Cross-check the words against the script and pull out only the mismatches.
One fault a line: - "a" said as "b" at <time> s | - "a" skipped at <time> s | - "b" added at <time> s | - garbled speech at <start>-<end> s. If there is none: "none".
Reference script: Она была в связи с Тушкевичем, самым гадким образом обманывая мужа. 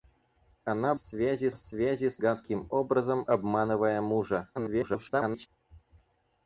- "была" said as "связи" at 1.0 s
- "Тушкевичем самым" skipped at 2.2 s
- garbled speech at 4.5-5.5 s